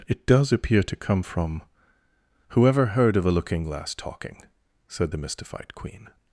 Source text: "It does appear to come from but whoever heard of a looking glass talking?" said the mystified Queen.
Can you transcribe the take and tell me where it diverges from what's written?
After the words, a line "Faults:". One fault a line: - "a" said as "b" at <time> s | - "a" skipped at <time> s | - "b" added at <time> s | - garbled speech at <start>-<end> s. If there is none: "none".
"It does appear to come from whoever heard of a looking glass talking?" said the mystified Queen.
Faults:
- "but" skipped at 1.6 s